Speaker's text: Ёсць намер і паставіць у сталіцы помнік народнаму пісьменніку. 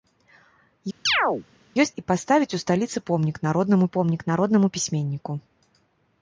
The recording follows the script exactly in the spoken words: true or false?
false